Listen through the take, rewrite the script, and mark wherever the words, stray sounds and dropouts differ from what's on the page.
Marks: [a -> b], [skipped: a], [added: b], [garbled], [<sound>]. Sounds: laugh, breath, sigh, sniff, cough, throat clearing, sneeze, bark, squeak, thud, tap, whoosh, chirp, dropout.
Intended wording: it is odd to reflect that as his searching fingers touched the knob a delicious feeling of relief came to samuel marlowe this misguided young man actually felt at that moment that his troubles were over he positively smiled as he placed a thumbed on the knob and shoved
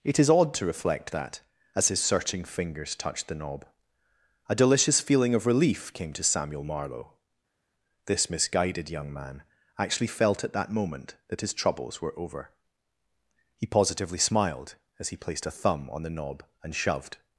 it is odd to reflect that as his searching fingers touched the knob a delicious feeling of relief came to samuel marlowe this misguided young man actually felt at that moment that his troubles were over he positively smiled as he placed a [thumbed -> thumb] on the knob and shoved